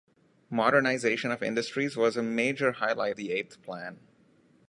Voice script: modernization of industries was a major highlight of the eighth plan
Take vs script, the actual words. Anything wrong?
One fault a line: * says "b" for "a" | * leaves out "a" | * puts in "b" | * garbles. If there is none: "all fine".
* leaves out "of"